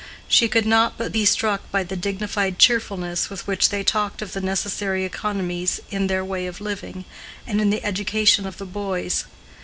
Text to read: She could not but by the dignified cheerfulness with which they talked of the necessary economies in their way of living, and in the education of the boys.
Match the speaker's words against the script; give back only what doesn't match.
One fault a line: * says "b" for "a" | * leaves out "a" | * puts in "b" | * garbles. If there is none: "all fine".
* puts in "be struck"